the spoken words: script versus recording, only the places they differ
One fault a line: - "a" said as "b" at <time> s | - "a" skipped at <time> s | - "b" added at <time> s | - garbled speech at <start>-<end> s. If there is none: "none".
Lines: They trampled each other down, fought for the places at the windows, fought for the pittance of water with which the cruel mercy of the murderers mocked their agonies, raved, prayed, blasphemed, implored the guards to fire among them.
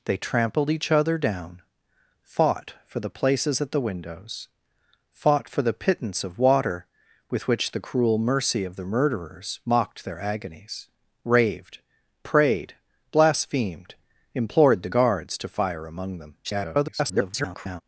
- garbled speech at 16.4-17.8 s